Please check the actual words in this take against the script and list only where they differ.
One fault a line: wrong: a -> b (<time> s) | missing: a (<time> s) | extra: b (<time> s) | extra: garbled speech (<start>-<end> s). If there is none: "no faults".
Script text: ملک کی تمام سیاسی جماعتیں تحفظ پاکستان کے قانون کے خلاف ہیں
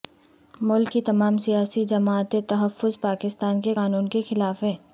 no faults